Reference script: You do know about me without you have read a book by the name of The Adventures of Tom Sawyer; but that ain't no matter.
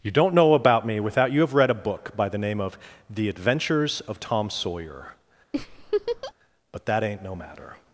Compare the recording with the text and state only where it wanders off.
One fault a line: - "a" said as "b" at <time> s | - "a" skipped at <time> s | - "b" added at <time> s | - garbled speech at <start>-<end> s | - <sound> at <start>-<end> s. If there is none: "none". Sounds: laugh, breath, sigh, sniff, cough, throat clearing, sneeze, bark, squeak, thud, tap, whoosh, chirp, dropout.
- "do" said as "don't" at 0.1 s
- laugh at 5.5-6.3 s